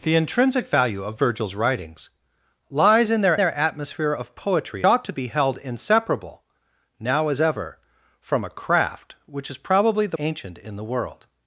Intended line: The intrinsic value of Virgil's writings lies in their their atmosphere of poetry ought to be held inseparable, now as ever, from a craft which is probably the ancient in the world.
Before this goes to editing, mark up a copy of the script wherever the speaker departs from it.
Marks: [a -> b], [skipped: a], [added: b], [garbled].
The intrinsic value of Virgil's writings lies in their their atmosphere of poetry ought to be held inseparable, now as ever, from a craft which is probably the ancient in the world.